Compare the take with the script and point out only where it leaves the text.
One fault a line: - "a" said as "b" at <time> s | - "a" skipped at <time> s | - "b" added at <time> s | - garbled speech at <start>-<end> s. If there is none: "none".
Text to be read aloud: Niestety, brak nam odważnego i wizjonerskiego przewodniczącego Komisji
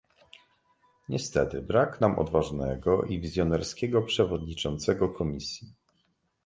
none